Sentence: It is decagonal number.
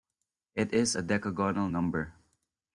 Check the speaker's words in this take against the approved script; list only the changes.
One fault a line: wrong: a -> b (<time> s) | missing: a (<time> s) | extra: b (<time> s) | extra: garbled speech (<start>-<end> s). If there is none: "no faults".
extra: a (0.9 s)